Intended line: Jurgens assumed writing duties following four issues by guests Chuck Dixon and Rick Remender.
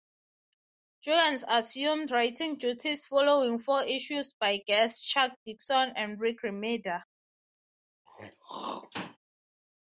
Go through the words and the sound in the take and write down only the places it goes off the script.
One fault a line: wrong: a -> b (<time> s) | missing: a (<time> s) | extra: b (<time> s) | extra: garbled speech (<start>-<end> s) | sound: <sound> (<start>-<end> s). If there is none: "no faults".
sound: throat clearing (8.1-9.2 s)